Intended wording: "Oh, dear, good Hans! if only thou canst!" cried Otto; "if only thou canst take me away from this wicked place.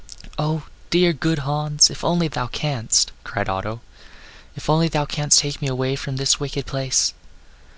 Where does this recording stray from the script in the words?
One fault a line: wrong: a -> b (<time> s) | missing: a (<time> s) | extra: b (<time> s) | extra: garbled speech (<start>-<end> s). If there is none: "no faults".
no faults